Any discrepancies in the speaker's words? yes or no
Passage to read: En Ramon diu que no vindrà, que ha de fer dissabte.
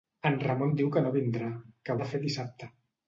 no